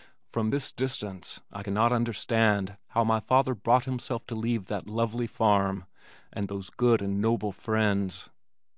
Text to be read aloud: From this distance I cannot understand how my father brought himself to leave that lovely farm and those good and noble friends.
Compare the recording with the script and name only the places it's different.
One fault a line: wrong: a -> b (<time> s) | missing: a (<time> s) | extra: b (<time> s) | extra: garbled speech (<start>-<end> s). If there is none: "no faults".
no faults